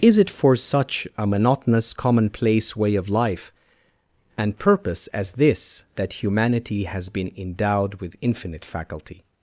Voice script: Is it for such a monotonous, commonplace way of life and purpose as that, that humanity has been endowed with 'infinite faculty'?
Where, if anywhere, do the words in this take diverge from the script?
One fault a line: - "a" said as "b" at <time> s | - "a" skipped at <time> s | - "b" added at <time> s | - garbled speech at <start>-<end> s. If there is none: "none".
- "that" said as "this" at 5.3 s